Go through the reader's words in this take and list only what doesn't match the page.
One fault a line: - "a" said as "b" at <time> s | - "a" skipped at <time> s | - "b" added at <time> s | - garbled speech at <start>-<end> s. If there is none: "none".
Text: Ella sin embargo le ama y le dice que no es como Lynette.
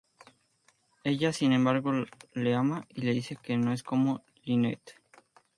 none